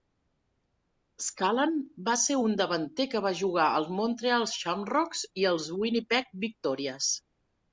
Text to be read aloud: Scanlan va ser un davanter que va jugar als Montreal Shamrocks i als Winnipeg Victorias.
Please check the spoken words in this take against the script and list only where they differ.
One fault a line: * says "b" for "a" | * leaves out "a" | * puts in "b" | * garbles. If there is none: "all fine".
all fine